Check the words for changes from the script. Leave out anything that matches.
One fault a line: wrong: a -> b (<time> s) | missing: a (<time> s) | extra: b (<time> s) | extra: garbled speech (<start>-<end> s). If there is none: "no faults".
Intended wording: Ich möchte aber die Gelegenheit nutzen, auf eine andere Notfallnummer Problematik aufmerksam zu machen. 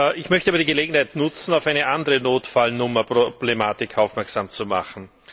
no faults